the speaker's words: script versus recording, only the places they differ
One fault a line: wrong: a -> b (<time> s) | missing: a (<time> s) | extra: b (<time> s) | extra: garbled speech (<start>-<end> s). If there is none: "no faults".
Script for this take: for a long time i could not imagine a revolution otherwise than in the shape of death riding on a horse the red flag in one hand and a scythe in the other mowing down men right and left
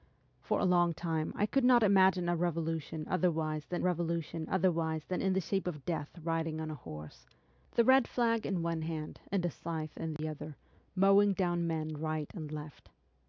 extra: revolution otherwise than (3.8 s)